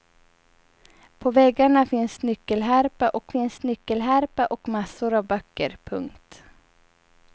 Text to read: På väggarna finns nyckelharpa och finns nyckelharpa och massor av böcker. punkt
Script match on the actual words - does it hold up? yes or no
yes